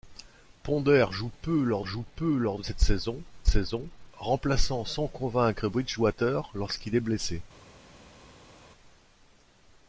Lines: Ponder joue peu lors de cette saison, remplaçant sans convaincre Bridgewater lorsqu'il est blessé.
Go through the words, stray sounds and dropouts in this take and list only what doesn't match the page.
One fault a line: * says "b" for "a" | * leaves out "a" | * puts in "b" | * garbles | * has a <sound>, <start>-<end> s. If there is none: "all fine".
* puts in "joue peu lors"
* puts in "saison"